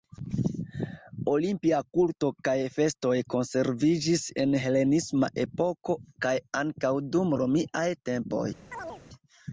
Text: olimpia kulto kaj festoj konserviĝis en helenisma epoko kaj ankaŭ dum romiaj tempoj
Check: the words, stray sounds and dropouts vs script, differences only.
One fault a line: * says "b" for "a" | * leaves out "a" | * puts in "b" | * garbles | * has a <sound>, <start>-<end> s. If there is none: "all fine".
* has a chirp, 8.7-9.0 s